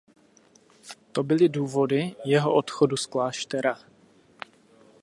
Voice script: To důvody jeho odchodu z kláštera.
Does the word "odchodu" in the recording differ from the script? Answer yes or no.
no